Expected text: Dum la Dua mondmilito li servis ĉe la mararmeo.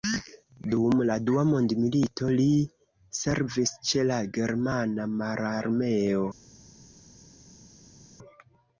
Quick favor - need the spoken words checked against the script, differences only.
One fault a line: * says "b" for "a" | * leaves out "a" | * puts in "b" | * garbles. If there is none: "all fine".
* puts in "germana"